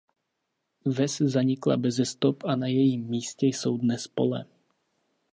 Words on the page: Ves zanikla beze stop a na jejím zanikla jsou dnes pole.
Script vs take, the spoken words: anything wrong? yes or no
yes